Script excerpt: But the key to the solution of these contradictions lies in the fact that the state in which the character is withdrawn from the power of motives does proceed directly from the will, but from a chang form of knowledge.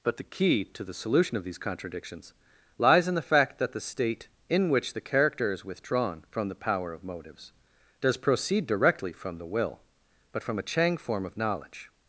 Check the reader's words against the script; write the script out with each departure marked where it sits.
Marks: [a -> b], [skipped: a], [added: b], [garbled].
But the key to the solution of these contradictions lies in the fact that the state in which the character is withdrawn from the power of motives does proceed directly from the will, but from a chang form of knowledge.